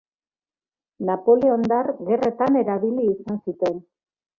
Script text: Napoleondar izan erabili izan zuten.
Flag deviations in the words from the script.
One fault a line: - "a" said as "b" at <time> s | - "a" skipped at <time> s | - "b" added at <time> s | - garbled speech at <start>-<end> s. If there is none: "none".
- "izan" said as "gerretan" at 2.1 s